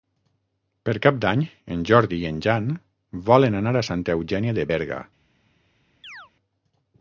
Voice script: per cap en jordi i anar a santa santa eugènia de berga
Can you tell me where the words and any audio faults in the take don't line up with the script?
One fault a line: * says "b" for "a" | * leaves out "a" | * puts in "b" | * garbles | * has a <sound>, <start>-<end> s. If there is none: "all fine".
* puts in "d'any"
* puts in "en jan volen"
* leaves out "santa"
* has a chirp, 6.0-6.3 s